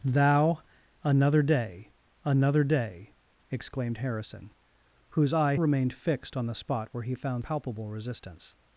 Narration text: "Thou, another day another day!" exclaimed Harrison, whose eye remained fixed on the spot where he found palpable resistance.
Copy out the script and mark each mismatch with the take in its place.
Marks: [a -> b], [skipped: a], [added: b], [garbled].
"Thou, another day another day!" exclaimed Harrison, whose eye remained fixed on the spot where he found palpable resistance.